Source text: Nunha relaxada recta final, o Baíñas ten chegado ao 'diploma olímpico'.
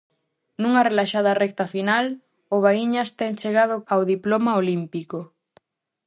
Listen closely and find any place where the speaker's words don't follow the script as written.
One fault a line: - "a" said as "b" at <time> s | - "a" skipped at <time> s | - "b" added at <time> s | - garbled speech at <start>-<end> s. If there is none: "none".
none